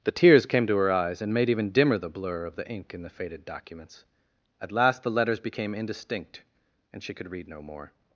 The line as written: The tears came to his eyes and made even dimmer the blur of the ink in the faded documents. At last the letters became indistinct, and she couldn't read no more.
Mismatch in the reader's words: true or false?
true